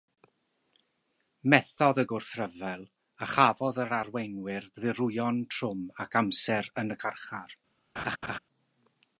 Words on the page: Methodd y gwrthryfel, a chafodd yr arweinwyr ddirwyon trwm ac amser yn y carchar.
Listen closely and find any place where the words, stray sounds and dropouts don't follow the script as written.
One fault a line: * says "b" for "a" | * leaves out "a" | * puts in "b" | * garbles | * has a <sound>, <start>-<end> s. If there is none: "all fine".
* has a laugh, 8.0-8.4 s